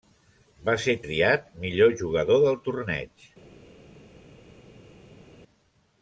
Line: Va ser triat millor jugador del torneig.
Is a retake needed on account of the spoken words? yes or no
no